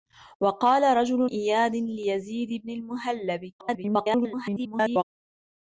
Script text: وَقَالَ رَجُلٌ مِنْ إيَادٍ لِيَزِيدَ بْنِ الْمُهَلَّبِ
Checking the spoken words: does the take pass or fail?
fail